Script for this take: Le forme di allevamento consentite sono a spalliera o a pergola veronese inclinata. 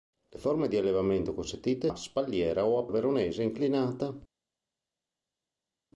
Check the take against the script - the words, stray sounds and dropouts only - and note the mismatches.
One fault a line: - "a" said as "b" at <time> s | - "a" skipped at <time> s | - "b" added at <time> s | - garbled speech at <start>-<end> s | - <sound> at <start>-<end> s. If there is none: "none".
- "sono" skipped at 1.9 s
- "pergola" skipped at 2.9 s